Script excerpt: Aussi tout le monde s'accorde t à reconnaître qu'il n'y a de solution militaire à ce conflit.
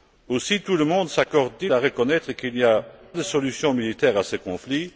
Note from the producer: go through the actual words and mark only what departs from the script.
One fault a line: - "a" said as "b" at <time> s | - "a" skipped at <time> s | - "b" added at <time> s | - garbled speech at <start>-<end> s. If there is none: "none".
none